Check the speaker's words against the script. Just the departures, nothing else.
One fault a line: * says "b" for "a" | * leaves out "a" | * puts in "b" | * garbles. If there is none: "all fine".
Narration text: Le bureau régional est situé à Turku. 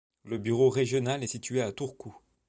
all fine